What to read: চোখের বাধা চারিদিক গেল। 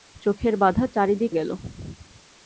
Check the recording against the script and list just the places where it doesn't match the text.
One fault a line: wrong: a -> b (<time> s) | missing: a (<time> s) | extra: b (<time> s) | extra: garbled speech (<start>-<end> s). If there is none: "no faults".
no faults